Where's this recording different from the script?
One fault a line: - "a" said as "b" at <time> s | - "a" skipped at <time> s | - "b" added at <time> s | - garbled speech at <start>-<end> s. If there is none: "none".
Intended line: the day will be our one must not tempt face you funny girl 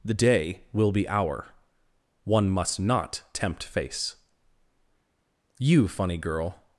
none